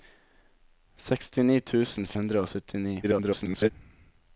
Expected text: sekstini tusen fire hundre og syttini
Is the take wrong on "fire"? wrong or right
wrong